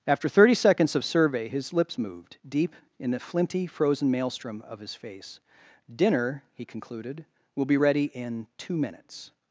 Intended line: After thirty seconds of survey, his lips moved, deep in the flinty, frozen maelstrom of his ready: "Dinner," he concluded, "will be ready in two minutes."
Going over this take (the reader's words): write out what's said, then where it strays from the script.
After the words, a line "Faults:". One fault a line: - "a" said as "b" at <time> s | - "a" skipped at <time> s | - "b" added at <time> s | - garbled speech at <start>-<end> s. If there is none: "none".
After thirty seconds of survey, his lips moved, deep in the flinty, frozen maelstrom of his face: "Dinner," he concluded, "will be ready in two minutes."
Faults:
- "ready" said as "face" at 4.9 s